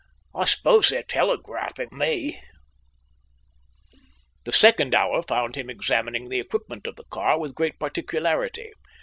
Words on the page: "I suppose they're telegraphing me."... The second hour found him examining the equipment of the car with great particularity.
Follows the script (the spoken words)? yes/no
yes